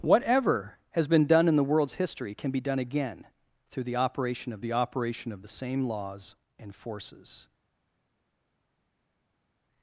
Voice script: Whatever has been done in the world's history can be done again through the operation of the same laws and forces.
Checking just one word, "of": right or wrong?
right